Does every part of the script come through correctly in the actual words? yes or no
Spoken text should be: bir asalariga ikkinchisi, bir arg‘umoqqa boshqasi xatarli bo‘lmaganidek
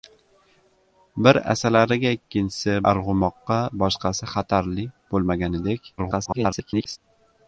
no